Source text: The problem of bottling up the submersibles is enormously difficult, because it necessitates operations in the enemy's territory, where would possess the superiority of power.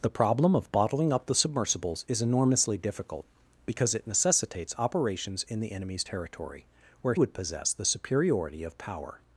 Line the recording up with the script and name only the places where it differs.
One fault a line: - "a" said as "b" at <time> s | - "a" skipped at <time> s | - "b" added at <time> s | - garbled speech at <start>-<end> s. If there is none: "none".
none